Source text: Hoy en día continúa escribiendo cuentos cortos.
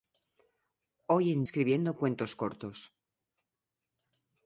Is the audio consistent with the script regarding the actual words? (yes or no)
no